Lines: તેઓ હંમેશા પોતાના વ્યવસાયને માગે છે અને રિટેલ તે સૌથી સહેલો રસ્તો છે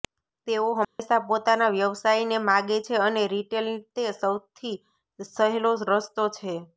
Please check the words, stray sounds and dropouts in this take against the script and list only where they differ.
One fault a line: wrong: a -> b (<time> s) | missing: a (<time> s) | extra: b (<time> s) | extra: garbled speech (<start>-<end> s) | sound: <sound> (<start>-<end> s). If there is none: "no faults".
sound: dropout (0.8-1.0 s)